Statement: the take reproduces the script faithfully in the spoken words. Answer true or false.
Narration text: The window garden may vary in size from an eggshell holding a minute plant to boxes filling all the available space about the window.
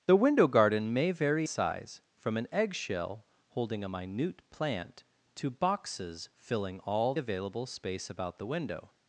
false